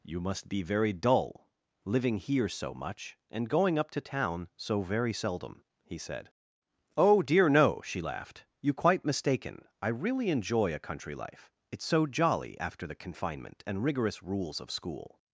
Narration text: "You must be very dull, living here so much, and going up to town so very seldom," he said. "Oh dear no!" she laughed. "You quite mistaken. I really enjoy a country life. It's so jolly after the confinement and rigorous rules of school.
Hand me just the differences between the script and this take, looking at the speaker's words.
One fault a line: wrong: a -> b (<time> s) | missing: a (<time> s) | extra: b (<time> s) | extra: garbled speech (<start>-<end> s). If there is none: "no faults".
no faults